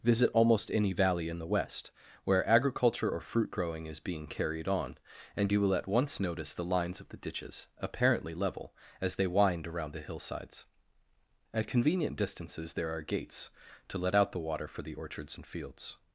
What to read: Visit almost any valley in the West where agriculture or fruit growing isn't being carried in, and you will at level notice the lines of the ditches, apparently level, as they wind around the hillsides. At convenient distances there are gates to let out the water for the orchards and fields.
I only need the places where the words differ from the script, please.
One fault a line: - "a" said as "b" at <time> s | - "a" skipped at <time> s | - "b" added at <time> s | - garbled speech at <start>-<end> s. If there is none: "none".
- "isn't" said as "is" at 3.9 s
- "in" said as "on" at 4.7 s
- "level" said as "once" at 5.9 s